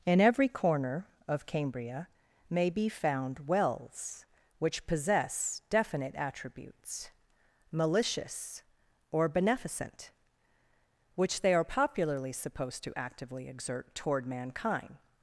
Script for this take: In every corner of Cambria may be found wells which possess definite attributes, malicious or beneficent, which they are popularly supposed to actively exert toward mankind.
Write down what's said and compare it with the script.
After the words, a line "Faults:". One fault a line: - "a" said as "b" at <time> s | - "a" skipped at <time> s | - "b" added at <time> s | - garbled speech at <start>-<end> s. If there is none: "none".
In every corner of Cambria may be found wells which possess definite attributes, malicious or beneficent, which they are popularly supposed to actively exert toward mankind.
Faults:
none